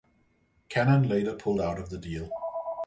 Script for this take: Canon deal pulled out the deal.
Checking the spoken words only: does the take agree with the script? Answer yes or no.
no